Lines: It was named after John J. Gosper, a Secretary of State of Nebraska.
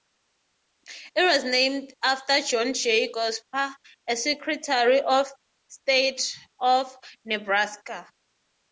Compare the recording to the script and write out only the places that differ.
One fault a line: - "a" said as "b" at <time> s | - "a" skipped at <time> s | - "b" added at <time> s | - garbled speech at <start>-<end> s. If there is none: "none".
none